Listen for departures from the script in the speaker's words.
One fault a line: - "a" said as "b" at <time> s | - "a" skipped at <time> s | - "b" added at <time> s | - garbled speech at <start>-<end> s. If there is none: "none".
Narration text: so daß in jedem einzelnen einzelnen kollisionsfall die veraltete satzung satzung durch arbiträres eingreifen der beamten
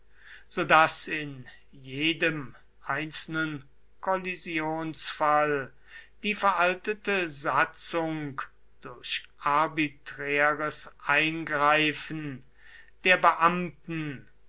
- "einzelnen" skipped at 3.7 s
- "satzung" skipped at 8.4 s